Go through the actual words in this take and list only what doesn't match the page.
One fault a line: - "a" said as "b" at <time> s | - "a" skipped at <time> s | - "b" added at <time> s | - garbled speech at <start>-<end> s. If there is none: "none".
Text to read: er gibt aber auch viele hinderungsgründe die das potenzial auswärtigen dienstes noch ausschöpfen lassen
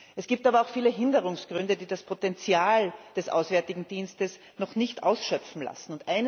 - "er" said as "es" at 0.1 s
- "des" added at 3.2 s
- "nicht" added at 4.8 s